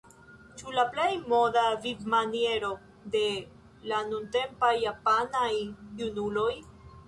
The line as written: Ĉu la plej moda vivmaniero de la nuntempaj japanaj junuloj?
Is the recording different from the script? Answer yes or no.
no